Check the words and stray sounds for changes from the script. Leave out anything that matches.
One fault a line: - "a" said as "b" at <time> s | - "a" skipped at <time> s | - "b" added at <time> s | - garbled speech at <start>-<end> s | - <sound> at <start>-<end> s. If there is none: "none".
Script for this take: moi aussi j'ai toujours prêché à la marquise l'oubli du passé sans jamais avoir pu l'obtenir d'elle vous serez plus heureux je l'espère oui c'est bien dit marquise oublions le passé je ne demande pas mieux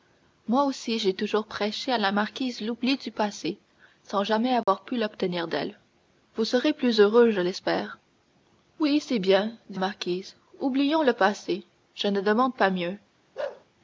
- dropout at 4.6-4.7 s
- bark at 13.3-13.6 s